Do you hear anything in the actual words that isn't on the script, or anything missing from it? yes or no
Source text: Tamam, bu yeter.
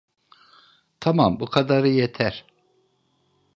yes